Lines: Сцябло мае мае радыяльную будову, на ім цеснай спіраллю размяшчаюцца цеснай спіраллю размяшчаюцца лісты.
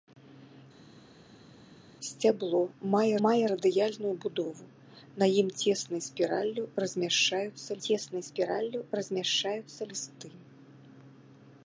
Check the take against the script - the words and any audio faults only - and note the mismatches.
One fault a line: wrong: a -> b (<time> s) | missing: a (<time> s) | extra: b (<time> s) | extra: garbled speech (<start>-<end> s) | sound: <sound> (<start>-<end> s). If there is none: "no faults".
no faults